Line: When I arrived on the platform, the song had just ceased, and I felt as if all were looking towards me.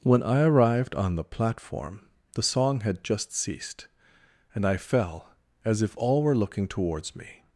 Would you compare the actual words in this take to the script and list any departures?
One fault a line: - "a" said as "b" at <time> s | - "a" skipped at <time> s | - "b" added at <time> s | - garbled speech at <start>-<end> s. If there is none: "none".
- "felt" said as "fell" at 4.8 s